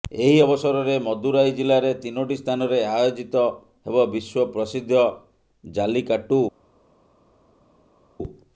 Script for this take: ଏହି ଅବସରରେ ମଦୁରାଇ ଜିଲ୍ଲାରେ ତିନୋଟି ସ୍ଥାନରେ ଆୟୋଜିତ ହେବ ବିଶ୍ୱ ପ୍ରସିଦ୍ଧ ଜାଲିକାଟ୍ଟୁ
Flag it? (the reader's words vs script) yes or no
no